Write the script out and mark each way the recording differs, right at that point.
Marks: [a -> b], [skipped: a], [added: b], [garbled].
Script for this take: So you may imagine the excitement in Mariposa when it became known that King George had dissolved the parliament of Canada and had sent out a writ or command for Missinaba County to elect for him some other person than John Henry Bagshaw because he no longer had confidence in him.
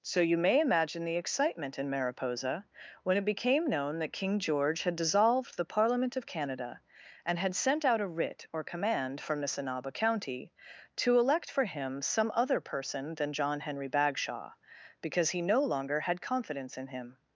So you may imagine the excitement in Mariposa when it became known that King George had dissolved the parliament of Canada and had sent out a writ or command [for -> from] Missinaba County to elect for him some other person than John Henry Bagshaw because he no longer had confidence in him.